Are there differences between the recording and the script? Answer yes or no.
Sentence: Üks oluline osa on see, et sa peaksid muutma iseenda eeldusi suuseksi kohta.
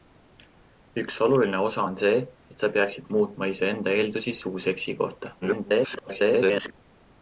yes